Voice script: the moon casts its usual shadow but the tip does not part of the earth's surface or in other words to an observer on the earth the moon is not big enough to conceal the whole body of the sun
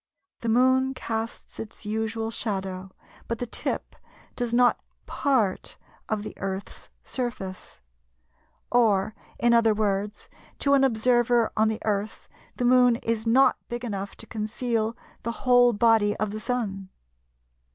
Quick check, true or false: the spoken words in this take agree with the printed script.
true